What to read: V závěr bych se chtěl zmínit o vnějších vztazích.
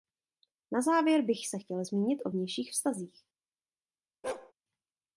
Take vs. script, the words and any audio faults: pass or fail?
fail